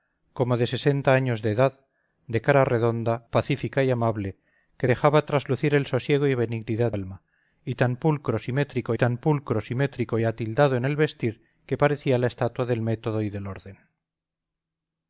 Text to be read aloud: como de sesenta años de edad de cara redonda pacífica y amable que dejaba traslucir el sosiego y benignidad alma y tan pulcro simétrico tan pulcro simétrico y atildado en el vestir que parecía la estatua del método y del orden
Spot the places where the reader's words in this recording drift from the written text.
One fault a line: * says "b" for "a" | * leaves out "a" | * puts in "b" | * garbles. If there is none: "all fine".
all fine